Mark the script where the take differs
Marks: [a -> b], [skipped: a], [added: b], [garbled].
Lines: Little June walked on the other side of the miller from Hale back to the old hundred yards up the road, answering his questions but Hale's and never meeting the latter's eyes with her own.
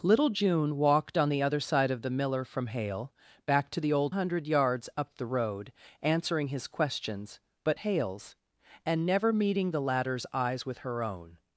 Little June walked on the other side of the miller from Hale back to the old hundred yards up the road, answering his questions but Hale's and never meeting the latter's eyes with her own.